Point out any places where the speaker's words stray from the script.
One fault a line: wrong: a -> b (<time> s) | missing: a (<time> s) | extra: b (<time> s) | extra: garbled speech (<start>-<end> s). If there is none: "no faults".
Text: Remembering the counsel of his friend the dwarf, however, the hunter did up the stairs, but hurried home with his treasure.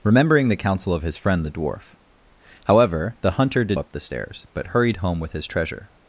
no faults